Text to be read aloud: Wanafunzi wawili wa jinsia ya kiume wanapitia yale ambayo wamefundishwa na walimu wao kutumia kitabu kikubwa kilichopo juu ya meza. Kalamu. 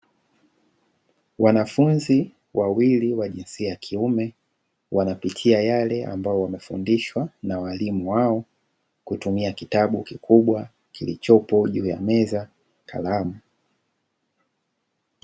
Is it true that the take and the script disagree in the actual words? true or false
false